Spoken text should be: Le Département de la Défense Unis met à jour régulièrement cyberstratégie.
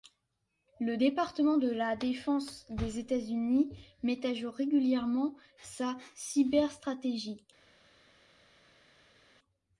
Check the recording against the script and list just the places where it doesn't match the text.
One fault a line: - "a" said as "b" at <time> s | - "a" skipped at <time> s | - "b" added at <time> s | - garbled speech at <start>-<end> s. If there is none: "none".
- "des États" added at 2.7 s
- "sa" added at 5.6 s